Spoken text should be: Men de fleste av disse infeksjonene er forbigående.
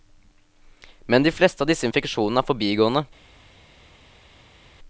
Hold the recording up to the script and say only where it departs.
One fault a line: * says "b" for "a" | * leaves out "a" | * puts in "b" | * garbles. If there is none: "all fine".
all fine